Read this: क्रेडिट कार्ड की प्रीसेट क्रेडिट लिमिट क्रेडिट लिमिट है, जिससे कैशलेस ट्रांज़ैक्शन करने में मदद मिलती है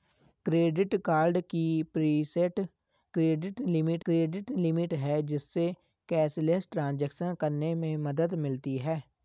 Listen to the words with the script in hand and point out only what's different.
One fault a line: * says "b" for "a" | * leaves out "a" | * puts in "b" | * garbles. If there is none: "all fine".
all fine